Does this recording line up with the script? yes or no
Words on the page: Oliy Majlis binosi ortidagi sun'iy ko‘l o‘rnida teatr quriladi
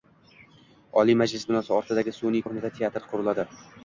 no